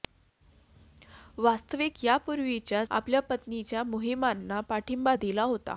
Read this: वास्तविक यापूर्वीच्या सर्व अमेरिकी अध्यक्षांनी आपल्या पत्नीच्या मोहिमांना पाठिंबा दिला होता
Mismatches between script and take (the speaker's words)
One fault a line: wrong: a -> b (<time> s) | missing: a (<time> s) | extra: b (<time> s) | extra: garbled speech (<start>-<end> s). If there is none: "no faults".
missing: सर्व अमेरिकी अध्यक्षांनी (2.8 s)